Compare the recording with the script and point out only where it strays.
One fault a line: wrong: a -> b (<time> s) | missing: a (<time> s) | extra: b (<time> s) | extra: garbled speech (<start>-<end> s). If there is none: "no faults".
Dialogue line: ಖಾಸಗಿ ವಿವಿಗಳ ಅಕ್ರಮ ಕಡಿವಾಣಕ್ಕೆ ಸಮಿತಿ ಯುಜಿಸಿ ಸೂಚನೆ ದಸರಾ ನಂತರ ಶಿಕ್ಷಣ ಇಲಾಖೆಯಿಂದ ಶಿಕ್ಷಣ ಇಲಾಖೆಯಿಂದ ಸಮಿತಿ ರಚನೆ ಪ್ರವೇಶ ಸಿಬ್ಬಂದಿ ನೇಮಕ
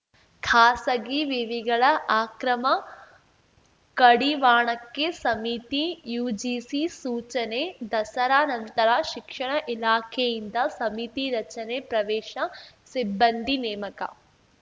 missing: ಶಿಕ್ಷಣ ಇಲಾಖೆಯಿಂದ (10.6 s)